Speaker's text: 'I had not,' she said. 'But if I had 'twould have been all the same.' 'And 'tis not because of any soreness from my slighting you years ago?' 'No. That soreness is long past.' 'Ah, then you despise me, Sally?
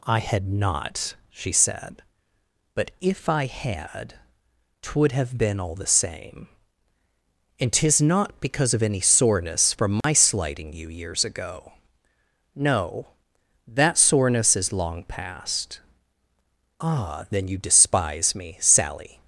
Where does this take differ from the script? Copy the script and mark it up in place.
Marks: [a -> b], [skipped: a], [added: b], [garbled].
'I had not,' she said. 'But if I had 'twould have been all the same.' 'And 'tis not because of any soreness from my slighting you years ago?' 'No. That soreness is long past.' 'Ah, then you despise me, Sally?